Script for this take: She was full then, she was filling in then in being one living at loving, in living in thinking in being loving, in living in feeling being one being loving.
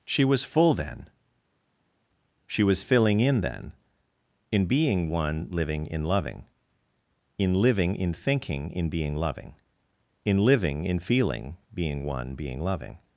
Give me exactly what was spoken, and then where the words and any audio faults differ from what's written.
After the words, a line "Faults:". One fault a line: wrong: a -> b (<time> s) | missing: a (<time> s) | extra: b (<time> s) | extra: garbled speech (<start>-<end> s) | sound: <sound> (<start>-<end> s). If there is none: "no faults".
She was full then, she was filling in then in being one living in loving, in living in thinking in being loving, in living in feeling being one being loving.
Faults:
wrong: at -> in (5.9 s)